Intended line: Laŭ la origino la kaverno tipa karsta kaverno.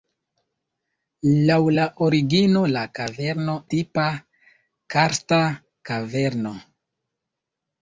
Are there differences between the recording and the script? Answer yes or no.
no